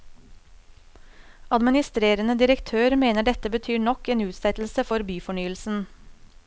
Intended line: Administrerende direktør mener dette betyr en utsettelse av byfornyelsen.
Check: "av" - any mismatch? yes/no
yes